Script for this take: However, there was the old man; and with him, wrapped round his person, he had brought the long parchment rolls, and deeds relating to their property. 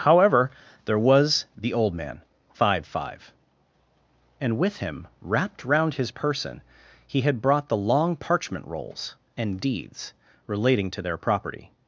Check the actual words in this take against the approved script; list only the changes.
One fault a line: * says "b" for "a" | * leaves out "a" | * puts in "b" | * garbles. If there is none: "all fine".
* puts in "five five"